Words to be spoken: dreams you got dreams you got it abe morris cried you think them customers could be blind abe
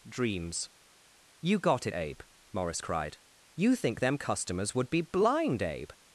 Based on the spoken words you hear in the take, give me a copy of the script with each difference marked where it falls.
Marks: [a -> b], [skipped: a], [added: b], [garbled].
dreams you got [skipped: dreams you got] it abe morris cried you think them customers [could -> would] be blind abe